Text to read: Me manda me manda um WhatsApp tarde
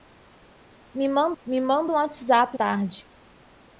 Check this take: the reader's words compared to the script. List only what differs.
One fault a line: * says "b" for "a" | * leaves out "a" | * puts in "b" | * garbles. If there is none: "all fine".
all fine